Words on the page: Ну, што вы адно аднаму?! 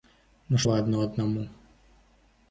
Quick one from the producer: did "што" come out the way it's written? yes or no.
no